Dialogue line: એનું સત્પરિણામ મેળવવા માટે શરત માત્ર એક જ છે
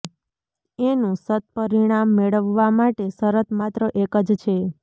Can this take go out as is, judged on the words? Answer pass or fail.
pass